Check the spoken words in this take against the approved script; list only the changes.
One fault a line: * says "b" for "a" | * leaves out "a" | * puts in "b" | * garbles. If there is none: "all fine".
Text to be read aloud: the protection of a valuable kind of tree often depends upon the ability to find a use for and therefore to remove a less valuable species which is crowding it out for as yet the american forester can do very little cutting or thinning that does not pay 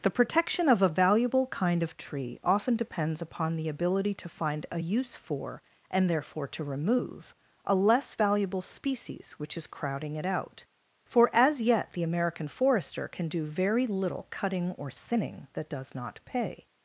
all fine